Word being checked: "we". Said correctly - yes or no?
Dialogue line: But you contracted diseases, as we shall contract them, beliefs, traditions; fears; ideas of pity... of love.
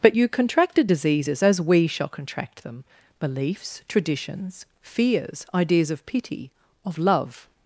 yes